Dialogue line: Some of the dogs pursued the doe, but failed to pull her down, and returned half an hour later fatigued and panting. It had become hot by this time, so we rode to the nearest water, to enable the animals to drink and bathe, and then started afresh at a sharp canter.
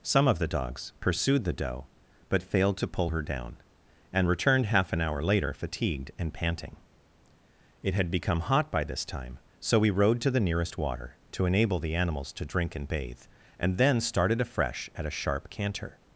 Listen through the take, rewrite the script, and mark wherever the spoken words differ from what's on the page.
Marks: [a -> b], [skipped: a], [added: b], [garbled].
Some of the dogs pursued the doe, but failed to pull her down, and returned half an hour later fatigued and panting. It had become hot by this time, so we rode to the nearest water, to enable the animals to drink and bathe, and then started afresh at a sharp canter.